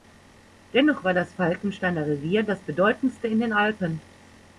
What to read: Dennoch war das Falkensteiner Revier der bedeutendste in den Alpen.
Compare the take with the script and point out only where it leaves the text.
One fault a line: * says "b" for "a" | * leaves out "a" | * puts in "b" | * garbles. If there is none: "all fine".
* says "das" for "der"